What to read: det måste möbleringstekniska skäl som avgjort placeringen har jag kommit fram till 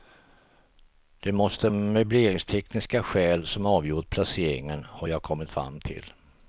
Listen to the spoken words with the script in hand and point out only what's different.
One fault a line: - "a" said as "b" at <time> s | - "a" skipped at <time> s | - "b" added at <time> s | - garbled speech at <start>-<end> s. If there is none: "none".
none